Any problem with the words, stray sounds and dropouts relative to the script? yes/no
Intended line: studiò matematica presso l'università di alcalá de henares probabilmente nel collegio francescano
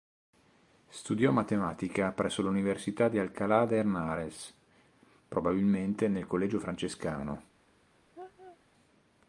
yes